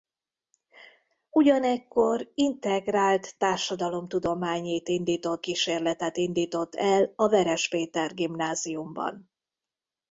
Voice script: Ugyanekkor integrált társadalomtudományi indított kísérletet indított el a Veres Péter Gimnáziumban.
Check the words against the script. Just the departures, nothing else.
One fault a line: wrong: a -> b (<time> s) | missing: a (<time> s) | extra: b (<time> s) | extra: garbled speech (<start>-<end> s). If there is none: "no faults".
no faults